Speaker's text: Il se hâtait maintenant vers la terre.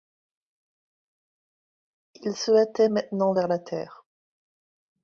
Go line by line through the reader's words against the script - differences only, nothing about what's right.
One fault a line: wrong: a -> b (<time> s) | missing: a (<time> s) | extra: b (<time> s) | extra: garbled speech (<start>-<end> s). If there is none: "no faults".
no faults